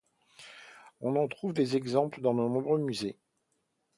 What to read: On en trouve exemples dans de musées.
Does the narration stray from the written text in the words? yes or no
yes